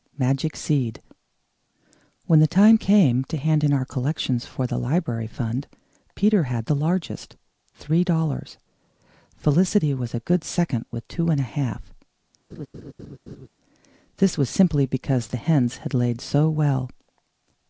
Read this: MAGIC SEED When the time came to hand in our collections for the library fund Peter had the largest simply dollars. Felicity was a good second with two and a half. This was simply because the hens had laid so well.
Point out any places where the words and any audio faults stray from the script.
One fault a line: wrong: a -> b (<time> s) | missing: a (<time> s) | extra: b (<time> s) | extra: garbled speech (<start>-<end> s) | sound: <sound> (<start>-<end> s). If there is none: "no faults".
wrong: simply -> three (7.8 s)
sound: laugh (12.5-13.5 s)